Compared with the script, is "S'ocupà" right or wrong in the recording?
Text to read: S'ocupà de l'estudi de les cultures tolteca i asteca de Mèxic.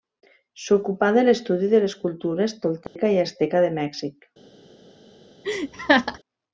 right